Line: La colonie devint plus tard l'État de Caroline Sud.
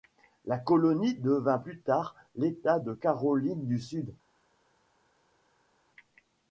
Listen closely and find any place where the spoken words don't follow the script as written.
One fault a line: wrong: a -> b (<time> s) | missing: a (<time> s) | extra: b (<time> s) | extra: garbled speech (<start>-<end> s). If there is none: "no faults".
extra: du (3.6 s)